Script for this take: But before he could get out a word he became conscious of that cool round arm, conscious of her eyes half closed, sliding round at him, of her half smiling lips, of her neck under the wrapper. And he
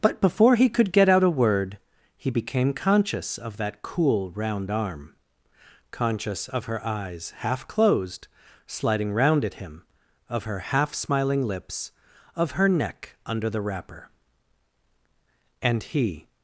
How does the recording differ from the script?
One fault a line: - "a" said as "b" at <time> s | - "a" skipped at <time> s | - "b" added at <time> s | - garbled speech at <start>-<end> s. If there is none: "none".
none